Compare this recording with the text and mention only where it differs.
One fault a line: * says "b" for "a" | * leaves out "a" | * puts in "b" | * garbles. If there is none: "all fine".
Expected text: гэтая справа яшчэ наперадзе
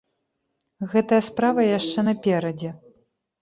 all fine